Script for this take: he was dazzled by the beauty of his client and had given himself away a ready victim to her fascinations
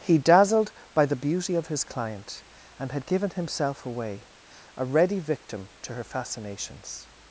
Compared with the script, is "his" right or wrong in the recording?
right